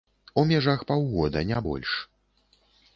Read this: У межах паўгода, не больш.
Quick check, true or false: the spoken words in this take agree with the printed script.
true